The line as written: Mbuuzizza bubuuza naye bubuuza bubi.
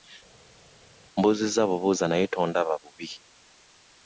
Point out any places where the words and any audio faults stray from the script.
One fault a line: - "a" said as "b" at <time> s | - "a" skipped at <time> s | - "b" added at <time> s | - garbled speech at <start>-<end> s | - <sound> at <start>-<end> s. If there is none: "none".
- "bubuuza" said as "tondaba" at 2.3 s